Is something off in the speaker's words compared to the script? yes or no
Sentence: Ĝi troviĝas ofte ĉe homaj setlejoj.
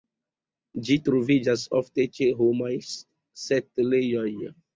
no